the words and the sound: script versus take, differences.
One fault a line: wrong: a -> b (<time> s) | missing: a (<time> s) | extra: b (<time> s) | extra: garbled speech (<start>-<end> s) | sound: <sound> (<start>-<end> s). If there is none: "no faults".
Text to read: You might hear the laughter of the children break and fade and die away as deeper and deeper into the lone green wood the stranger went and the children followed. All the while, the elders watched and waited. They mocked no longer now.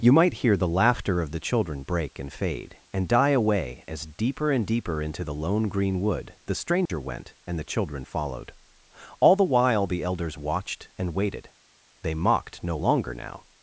sound: dropout (6.9-6.9 s)